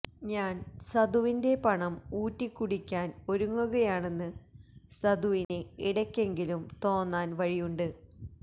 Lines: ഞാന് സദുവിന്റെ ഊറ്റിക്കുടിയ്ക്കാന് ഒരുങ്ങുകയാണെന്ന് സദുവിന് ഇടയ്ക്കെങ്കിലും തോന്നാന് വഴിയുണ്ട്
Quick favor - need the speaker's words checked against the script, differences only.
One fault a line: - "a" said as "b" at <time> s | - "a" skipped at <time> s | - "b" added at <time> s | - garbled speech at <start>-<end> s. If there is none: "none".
- "പണം" added at 1.6 s